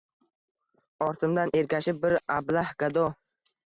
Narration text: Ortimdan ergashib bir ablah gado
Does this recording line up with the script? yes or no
yes